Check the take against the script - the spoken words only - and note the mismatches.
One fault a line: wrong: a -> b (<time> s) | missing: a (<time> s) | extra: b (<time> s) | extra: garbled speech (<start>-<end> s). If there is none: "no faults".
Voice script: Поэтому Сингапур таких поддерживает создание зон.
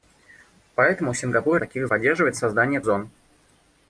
no faults